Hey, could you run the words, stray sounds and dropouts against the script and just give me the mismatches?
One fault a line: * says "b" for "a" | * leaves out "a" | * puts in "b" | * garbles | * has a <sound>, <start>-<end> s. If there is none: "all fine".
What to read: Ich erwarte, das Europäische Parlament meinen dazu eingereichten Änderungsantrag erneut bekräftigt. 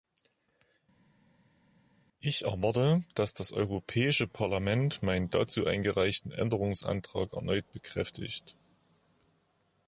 * puts in "dass"